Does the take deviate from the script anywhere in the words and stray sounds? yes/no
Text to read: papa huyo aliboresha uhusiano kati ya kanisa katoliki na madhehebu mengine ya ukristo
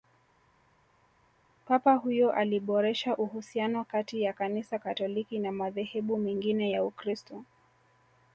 no